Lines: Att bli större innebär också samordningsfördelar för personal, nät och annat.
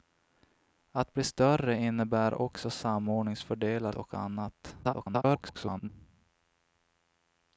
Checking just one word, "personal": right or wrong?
wrong